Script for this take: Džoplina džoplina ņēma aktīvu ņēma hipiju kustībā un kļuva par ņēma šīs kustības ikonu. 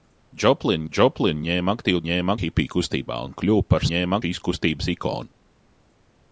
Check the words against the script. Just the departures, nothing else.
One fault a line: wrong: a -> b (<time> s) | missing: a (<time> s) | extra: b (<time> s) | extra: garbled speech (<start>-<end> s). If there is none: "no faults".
no faults